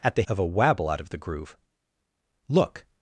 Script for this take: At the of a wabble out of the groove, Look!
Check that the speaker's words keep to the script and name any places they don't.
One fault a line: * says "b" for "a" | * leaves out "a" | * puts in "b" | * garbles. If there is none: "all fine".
all fine